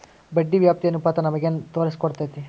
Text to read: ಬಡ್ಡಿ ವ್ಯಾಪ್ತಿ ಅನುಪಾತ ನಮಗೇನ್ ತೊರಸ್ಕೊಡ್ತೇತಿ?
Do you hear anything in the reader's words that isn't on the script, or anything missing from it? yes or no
no